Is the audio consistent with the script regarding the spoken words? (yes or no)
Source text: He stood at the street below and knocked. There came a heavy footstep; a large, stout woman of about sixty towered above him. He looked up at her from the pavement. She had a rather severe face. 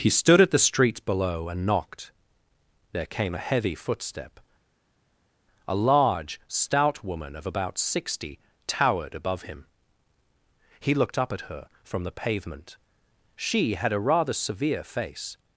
yes